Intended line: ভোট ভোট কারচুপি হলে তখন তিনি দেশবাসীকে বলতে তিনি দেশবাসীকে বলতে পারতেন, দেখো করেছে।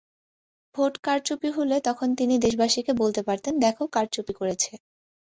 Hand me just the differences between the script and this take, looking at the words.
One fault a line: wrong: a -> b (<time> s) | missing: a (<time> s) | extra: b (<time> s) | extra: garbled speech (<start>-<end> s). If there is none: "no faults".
missing: ভোট (0.9 s)
missing: তিনি দেশবাসীকে বলতে (3.2 s)
extra: কারচুপি (3.9 s)